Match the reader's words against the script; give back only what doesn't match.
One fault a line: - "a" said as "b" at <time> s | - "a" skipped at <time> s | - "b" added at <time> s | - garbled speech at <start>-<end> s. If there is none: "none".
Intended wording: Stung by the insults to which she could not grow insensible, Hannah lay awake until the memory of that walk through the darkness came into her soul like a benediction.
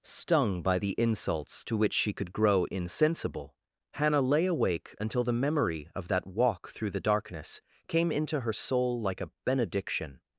- "not" skipped at 2.3 s